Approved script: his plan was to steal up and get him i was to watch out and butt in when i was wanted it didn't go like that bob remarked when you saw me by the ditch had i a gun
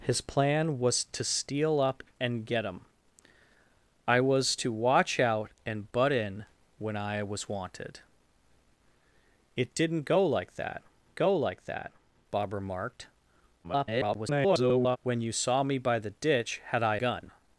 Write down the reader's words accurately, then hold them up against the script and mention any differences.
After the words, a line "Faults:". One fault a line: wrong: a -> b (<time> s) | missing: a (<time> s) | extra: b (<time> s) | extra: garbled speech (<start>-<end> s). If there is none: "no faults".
his plan was to steal up and get him i was to watch out and butt in when i was wanted it didn't go like that go like that bob remarked [garbled] when you saw me by the ditch had i gun
Faults:
extra: go like that (11.2 s)
extra: garbled speech (13.6-15.0 s)
missing: a (17.0 s)